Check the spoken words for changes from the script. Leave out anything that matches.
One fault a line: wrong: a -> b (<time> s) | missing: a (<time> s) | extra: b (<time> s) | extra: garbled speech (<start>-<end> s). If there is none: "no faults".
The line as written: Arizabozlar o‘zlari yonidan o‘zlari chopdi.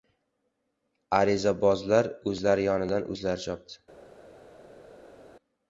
no faults